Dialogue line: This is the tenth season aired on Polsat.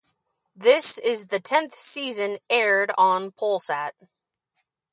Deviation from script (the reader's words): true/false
false